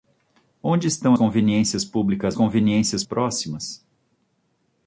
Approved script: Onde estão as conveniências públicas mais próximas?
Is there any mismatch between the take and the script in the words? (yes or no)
yes